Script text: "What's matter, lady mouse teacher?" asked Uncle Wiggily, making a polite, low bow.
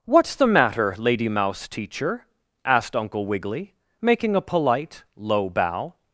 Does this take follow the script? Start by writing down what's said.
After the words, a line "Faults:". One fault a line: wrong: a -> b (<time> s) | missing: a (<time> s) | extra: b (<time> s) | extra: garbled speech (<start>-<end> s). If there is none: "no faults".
"What's the matter, lady mouse teacher?" asked Uncle Wiggily, making a polite, low bow.
Faults:
extra: the (0.3 s)